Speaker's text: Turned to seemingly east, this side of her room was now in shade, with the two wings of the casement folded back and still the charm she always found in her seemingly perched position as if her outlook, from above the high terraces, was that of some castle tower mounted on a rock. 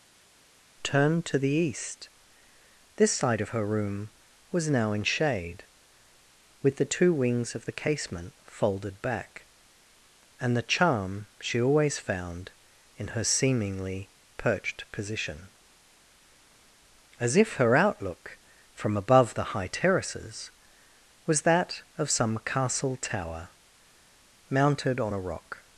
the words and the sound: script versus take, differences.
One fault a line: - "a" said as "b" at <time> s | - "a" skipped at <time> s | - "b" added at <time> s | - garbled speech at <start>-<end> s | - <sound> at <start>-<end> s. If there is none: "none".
- "seemingly" said as "the" at 1.4 s
- "still" skipped at 10.5 s